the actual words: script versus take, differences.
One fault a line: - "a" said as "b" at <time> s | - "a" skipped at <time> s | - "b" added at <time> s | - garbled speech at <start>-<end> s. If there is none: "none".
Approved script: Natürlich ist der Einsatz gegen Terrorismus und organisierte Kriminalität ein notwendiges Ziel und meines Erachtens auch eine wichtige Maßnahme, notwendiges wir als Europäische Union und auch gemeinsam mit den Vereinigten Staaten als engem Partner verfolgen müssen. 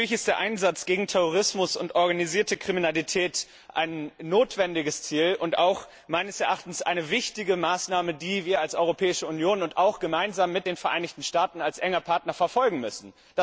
- "notwendiges" said as "die" at 8.1 s